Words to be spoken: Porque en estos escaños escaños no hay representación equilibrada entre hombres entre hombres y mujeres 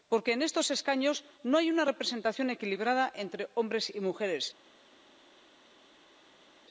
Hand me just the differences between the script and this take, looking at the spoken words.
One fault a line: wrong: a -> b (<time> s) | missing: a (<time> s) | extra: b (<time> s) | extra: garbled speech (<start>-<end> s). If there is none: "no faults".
missing: escaños (1.2 s)
extra: una (1.7 s)
missing: entre hombres (3.8 s)